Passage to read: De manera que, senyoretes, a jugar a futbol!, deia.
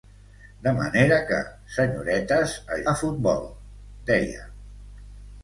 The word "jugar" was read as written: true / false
false